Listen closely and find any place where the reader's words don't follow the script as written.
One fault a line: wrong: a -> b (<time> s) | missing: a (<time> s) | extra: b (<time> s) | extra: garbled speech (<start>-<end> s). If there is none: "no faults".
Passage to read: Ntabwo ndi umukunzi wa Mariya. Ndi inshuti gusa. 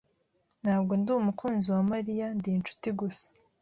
no faults